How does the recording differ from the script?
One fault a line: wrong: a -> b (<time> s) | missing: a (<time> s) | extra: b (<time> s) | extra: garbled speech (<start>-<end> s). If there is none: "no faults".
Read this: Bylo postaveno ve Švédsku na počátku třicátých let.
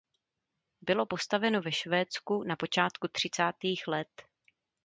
no faults